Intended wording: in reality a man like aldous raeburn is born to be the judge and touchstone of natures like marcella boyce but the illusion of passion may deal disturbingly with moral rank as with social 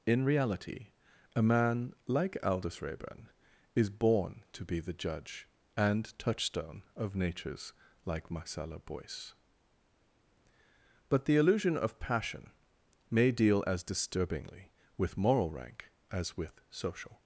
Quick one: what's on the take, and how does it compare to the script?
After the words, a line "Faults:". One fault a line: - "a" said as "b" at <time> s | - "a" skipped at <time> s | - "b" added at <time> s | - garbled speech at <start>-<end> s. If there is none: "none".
in reality a man like aldous raeburn is born to be the judge and touchstone of natures like marcella boyce but the illusion of passion may deal as disturbingly with moral rank as with social
Faults:
- "as" added at 13.7 s